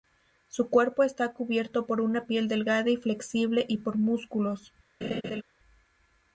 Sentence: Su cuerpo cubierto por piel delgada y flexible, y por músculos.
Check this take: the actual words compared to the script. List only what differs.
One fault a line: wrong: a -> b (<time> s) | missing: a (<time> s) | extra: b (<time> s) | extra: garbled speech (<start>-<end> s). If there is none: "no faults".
extra: está (1.0 s)
extra: una (2.0 s)